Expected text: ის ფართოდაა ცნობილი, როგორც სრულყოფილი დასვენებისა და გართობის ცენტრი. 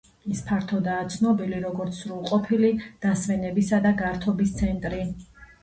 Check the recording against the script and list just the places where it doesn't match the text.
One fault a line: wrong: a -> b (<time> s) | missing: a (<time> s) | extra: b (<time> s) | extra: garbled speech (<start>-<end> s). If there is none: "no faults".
no faults